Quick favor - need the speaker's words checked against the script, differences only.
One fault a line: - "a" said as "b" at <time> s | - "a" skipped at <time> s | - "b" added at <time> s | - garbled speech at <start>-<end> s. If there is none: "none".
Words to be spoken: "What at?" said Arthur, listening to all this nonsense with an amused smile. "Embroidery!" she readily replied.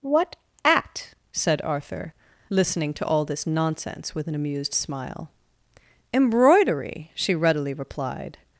none